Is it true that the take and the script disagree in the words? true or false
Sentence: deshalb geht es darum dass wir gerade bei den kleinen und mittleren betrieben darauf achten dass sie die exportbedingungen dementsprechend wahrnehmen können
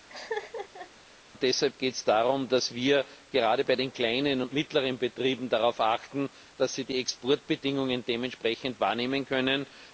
false